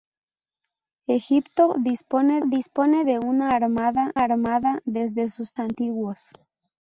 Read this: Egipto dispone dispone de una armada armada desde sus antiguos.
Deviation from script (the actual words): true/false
false